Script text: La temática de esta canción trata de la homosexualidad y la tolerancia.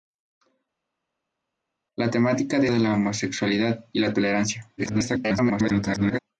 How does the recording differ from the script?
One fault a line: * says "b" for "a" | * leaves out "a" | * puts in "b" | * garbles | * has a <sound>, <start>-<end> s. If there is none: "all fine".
* leaves out "esta canción trata"
* garbles